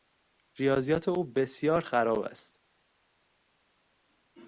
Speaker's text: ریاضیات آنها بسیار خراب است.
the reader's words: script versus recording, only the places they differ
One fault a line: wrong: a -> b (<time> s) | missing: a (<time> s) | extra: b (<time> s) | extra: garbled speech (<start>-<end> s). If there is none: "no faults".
wrong: آنها -> او (1.1 s)